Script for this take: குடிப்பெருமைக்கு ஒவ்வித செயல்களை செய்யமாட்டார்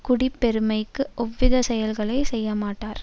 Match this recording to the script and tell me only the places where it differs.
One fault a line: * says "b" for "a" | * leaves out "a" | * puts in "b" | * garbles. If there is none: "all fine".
all fine